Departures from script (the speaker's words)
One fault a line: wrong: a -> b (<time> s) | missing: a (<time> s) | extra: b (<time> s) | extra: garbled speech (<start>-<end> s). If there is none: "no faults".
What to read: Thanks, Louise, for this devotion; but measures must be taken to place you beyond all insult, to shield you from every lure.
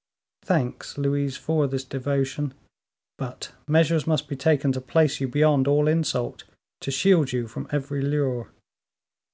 no faults